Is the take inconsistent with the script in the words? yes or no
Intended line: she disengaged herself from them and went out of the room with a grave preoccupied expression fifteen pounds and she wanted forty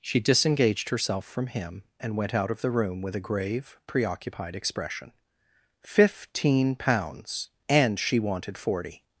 yes